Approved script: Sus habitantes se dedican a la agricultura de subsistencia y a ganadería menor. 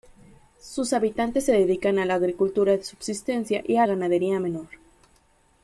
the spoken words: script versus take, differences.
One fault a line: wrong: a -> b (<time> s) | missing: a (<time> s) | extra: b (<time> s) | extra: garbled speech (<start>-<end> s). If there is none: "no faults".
no faults